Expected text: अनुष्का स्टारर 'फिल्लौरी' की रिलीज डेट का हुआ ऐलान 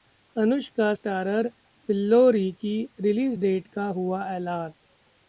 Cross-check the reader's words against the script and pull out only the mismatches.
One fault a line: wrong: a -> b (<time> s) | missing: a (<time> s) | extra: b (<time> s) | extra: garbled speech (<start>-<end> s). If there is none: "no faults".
no faults